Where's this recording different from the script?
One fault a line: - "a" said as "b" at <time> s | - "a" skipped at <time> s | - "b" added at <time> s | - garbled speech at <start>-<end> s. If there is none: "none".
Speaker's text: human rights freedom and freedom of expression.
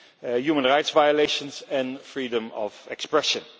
- "freedom" said as "violations" at 0.9 s